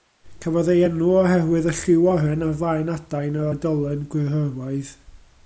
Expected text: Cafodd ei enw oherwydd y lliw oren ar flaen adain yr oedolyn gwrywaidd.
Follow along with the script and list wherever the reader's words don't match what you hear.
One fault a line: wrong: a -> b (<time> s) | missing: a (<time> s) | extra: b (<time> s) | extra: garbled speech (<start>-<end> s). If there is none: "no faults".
no faults